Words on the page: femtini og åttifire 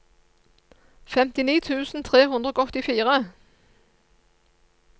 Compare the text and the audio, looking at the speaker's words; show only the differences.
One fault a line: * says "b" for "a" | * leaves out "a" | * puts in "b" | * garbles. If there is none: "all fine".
* puts in "tusen tre hundre"